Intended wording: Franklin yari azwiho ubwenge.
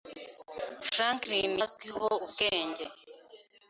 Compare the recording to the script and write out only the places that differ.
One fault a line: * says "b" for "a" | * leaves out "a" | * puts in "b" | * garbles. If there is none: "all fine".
* leaves out "yari"